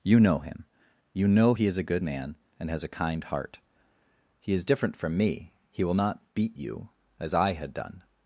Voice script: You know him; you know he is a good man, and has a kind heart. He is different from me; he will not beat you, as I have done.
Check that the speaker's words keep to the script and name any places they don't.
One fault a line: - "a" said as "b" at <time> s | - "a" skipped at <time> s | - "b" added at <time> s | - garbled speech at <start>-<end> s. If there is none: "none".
- "have" said as "had" at 7.5 s